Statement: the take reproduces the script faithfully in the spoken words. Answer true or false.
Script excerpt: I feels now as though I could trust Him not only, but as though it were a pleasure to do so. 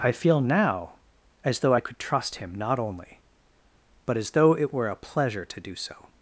false